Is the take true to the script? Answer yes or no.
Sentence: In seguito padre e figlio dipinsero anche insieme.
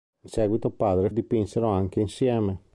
no